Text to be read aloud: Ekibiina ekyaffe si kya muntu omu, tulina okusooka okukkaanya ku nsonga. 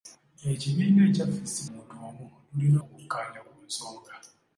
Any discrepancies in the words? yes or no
yes